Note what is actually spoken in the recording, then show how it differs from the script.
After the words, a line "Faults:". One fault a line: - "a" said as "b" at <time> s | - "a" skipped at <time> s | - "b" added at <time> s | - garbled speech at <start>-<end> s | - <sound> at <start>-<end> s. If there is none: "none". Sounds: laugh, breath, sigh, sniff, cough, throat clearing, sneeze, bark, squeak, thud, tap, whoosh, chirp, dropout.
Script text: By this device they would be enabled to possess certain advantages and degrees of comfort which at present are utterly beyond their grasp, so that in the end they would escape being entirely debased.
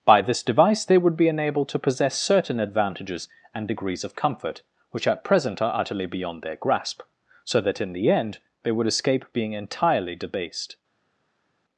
By this device they would be enabled to possess certain advantages and degrees of comfort which at present are utterly beyond their grasp, so that in the end they would escape being entirely debased.
Faults:
none